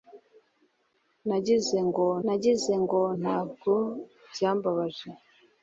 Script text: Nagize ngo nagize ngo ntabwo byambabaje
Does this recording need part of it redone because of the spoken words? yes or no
no